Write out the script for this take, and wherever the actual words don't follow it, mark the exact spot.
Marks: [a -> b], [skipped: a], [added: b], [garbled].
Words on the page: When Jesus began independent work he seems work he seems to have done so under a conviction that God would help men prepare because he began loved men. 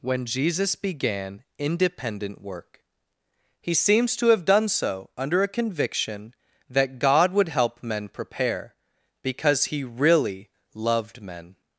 When Jesus began independent work he seems [skipped: work he seems] to have done so under a conviction that God would help men prepare because he [began -> really] loved men.